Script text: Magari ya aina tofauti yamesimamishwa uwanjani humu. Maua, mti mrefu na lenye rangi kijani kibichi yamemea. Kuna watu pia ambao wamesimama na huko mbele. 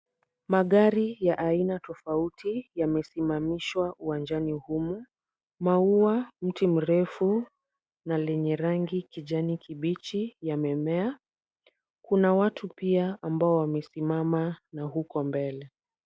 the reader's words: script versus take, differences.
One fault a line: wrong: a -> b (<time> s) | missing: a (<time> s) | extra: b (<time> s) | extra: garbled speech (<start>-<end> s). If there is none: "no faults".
no faults